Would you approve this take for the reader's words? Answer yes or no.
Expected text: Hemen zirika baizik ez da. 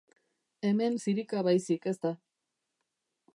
yes